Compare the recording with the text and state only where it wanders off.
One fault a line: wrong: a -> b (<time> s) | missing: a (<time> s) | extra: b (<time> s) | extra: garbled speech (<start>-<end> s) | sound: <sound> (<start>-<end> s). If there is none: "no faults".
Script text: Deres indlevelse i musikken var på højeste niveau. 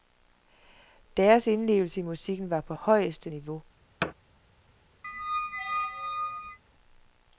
sound: thud (4.0-4.1 s)
sound: squeak (5.0-6.6 s)